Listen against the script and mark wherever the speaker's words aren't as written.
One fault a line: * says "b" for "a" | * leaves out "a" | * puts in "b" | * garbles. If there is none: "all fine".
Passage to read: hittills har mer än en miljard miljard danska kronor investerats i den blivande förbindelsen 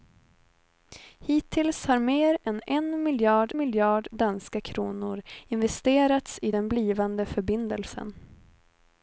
all fine